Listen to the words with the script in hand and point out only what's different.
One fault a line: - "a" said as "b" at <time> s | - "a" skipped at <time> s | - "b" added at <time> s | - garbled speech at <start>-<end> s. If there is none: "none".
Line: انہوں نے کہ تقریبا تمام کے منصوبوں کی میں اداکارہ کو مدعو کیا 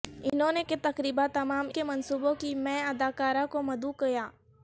none